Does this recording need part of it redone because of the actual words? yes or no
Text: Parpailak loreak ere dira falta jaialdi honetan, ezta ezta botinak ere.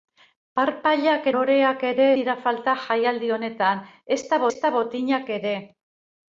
no